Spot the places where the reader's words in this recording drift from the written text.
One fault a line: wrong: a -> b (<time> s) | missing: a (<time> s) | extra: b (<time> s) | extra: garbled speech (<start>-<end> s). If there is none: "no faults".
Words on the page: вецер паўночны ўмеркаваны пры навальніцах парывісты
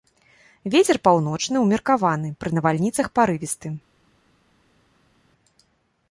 no faults